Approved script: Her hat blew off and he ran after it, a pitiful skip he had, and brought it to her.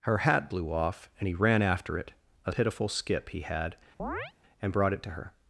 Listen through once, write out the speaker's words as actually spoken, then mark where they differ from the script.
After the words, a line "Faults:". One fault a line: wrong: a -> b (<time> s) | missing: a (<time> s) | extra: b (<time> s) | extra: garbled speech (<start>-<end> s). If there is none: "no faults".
Her hat blew off and he ran after it, a pitiful skip he had, and brought it to her.
Faults:
no faults